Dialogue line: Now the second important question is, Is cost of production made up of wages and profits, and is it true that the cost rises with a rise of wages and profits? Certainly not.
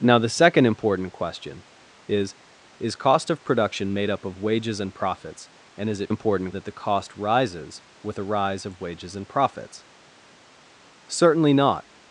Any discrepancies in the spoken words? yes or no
yes